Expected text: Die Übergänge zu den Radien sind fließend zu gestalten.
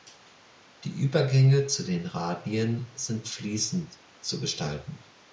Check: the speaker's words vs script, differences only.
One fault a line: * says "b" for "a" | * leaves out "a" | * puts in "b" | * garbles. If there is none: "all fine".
all fine